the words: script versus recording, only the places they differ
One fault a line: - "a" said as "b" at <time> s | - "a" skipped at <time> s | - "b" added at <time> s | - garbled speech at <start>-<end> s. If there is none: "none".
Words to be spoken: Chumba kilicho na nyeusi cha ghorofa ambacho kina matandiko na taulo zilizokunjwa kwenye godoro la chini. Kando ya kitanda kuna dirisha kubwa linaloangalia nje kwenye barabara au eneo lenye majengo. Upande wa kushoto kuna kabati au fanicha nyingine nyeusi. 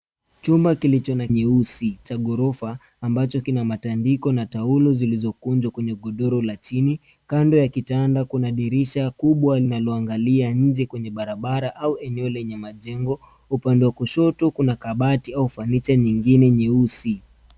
none